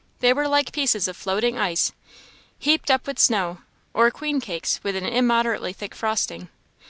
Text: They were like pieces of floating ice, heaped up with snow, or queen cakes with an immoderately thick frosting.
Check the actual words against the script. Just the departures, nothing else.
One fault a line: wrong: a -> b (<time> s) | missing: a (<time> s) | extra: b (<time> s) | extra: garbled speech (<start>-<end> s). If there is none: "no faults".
no faults